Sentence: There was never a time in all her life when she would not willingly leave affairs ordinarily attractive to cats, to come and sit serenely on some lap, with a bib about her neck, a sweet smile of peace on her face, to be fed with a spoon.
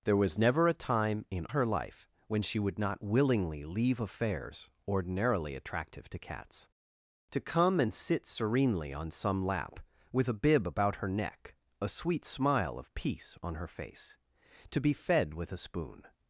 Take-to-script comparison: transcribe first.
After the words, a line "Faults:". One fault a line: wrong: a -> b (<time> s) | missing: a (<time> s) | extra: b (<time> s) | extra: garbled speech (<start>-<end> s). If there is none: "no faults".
There was never a time in her life when she would not willingly leave affairs ordinarily attractive to cats, to come and sit serenely on some lap, with a bib about her neck, a sweet smile of peace on her face, to be fed with a spoon.
Faults:
missing: all (1.4 s)